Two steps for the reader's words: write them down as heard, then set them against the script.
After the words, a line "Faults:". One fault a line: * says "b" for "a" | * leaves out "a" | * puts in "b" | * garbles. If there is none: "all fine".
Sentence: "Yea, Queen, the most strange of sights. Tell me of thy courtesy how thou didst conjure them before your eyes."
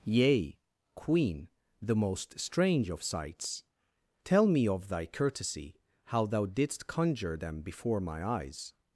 "Yea, Queen, the most strange of sights. Tell me of thy courtesy how thou didst conjure them before my eyes."
Faults:
* says "my" for "your"